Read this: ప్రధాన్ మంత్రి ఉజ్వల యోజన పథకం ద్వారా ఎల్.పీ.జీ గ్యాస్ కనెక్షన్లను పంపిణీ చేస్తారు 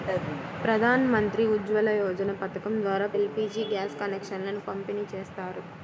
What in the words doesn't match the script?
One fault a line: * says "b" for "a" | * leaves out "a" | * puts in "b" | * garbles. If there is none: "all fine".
all fine